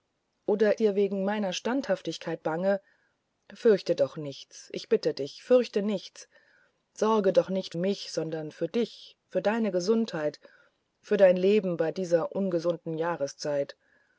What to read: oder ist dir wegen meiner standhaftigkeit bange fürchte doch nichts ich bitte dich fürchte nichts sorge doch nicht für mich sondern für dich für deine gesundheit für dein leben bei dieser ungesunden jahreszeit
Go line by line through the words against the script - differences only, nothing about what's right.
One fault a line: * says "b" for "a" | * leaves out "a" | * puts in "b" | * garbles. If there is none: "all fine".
* leaves out "ist"
* leaves out "für"